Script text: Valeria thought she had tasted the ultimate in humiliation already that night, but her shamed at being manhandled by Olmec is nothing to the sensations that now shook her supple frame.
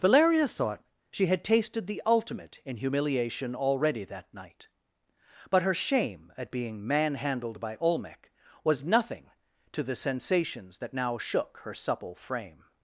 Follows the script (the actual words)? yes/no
no